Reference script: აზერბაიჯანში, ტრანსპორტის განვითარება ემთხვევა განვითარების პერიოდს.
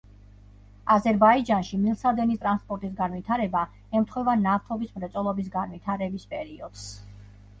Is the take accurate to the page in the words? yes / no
no